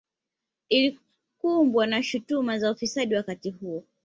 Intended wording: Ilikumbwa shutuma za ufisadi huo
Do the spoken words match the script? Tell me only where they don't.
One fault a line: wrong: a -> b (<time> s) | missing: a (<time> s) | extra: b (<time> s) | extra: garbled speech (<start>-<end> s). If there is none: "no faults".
extra: na (1.9 s)
extra: wakati (3.2 s)